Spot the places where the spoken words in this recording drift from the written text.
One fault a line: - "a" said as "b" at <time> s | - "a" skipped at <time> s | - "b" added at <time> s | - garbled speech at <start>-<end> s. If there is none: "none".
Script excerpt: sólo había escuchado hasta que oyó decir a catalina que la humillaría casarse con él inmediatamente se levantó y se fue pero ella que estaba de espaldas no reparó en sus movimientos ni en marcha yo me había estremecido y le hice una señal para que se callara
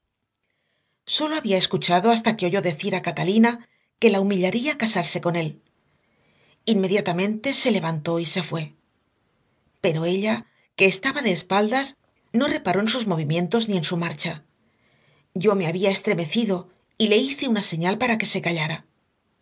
- "su" added at 13.8 s